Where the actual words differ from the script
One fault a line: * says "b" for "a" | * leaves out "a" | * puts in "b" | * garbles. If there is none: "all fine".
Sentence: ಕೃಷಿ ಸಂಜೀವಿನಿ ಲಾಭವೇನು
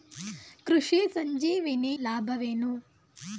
all fine